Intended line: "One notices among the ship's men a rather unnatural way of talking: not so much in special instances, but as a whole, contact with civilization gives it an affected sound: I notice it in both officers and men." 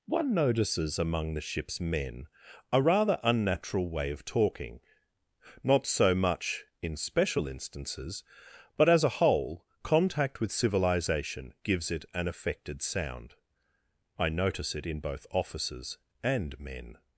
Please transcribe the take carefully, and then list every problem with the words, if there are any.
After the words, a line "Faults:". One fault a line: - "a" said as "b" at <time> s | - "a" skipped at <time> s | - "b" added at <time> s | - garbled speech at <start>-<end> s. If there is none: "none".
"One notices among the ship's men a rather unnatural way of talking: not so much in special instances, but as a whole, contact with civilization gives it an affected sound: I notice it in both officers and men."
Faults:
none